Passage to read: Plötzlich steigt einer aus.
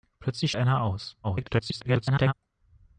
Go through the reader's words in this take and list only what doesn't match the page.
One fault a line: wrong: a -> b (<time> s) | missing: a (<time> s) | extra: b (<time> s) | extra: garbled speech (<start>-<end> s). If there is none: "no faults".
missing: steigt (0.5 s)
extra: garbled speech (1.2-2.3 s)